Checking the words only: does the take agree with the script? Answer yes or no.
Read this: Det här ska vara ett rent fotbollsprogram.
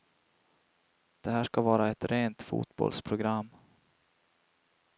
yes